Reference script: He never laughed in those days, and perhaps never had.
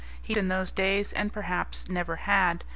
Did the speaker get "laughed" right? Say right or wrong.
wrong